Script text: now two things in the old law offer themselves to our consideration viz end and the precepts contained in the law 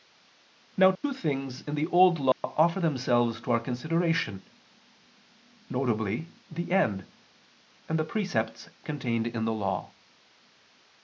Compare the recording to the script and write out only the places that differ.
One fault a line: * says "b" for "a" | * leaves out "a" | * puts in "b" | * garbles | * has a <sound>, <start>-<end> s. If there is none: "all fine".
* has a dropout, 0.9-1.0 s
* has a dropout, 2.3-2.4 s
* puts in "the"